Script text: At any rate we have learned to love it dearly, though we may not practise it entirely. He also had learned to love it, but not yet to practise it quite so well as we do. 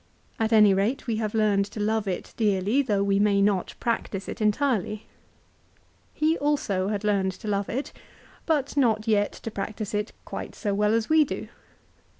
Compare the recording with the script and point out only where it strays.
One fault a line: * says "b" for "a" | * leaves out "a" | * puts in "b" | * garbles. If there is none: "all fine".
all fine